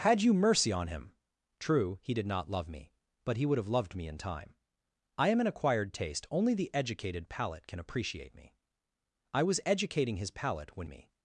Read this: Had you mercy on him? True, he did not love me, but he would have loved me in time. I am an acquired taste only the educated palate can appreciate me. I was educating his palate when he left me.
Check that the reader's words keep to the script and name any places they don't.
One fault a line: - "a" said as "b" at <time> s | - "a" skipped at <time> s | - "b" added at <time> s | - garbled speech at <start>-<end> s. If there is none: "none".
- "he left" skipped at 10.9 s